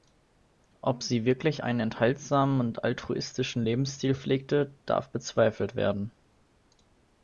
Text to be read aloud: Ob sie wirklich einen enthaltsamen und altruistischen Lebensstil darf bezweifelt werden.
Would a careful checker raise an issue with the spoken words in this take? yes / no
yes